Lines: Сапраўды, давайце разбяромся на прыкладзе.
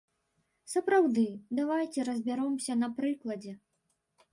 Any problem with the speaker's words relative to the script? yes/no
no